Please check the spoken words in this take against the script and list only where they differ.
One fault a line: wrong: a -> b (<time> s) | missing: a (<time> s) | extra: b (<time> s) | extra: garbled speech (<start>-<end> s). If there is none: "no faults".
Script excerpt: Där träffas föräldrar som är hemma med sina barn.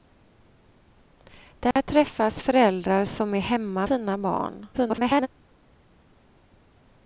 missing: med (3.9 s)
extra: garbled speech (4.7-5.3 s)